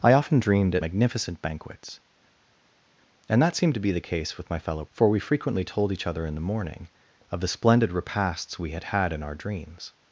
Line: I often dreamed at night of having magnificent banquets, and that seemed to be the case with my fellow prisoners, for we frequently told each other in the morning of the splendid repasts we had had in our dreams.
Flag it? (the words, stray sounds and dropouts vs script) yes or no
yes